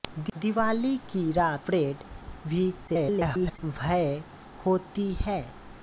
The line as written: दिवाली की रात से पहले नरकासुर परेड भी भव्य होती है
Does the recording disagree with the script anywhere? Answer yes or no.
yes